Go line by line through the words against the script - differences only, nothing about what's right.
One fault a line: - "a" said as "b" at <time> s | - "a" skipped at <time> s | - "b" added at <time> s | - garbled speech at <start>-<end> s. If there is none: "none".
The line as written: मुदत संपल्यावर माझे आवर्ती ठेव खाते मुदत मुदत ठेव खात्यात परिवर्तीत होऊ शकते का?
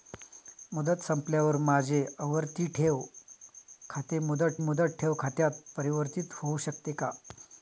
none